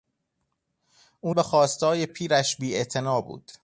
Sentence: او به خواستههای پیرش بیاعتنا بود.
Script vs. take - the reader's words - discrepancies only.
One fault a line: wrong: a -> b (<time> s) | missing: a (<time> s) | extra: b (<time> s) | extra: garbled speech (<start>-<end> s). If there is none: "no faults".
no faults